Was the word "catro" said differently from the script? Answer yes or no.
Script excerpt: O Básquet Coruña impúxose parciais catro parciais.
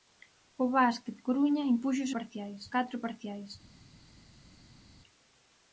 no